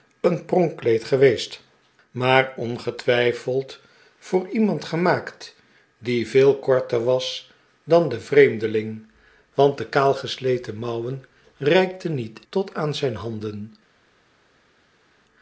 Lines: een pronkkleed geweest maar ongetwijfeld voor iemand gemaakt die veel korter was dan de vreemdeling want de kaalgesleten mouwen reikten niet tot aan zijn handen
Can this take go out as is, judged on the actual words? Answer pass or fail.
pass